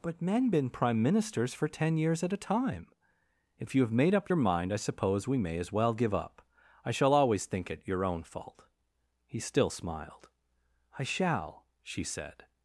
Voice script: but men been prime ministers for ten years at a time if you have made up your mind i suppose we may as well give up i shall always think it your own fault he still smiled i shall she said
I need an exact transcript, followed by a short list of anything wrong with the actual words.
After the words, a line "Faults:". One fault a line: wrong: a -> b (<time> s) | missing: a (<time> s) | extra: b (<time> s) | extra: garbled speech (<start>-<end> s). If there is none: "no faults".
but men been prime ministers for ten years at a time if you have made up your mind i suppose we may as well give up i shall always think it your own fault he still smiled i shall she said
Faults:
no faults